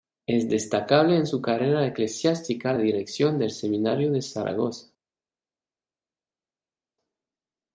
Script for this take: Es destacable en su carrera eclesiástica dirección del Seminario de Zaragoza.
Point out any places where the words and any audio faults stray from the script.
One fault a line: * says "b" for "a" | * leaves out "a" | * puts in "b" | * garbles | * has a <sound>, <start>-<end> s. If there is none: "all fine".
all fine